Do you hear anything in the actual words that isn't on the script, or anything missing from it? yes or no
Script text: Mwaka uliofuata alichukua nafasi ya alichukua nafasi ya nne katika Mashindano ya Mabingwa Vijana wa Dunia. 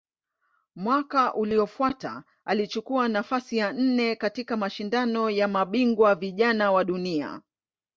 yes